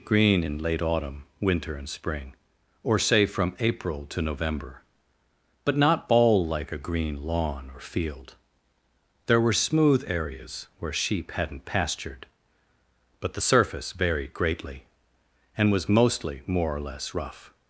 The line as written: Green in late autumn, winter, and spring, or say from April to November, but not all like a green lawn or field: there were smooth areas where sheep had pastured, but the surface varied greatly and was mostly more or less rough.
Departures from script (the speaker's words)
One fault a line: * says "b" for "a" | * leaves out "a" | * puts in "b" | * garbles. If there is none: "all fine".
* says "hadn't" for "had"